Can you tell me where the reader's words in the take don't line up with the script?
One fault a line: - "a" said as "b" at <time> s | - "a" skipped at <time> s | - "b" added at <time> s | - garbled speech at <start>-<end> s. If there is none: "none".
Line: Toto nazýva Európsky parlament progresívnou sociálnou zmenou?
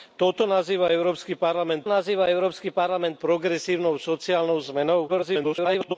- "nazýva Európsky parlament" added at 1.8 s
- garbled speech at 5.1-6.0 s